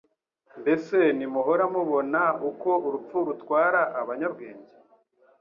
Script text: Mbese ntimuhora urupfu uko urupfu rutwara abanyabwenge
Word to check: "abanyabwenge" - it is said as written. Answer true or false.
true